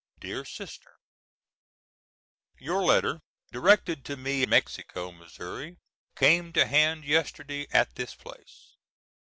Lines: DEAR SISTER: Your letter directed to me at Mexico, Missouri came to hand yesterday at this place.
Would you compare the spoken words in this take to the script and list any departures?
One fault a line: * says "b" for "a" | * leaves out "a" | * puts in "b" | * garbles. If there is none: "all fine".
* leaves out "at"